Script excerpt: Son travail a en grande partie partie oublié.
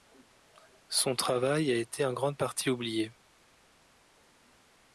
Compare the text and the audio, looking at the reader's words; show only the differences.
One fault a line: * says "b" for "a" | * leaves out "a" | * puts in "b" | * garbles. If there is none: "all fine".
* puts in "été"
* leaves out "partie"